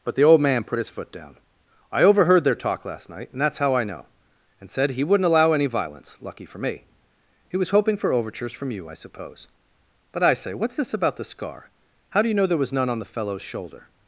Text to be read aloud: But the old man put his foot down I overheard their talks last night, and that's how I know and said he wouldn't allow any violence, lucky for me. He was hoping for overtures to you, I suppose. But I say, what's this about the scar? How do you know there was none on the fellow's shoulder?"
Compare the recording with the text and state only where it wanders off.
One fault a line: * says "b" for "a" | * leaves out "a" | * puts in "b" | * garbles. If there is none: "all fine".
* says "talk" for "talks"
* says "from" for "to"